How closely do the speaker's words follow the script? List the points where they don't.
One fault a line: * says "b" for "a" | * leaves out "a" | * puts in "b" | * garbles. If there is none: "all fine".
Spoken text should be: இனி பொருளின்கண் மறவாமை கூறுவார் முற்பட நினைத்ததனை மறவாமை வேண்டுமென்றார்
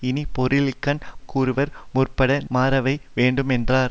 * leaves out "மறவாமை"
* leaves out "நினைத்ததனை"